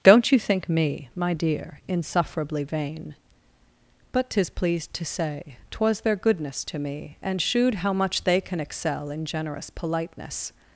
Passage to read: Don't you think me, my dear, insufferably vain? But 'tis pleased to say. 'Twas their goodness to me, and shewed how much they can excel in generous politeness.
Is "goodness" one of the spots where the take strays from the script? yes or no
no